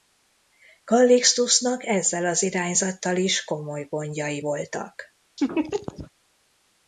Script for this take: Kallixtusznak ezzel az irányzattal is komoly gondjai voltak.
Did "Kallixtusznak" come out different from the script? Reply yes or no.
no